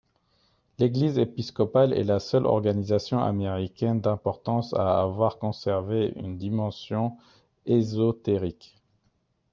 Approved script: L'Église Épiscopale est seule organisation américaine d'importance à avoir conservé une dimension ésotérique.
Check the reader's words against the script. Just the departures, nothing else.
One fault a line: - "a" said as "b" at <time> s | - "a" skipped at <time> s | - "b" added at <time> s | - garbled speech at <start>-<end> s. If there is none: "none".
- "la" added at 2.0 s